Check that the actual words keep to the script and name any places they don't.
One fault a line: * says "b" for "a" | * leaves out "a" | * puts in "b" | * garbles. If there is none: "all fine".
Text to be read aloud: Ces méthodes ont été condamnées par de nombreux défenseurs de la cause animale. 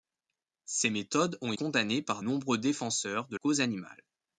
* leaves out "été"
* leaves out "de"
* leaves out "la"